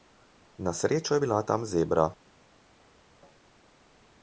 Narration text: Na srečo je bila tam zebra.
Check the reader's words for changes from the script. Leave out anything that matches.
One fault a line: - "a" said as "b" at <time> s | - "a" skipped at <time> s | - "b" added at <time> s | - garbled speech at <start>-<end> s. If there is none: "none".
none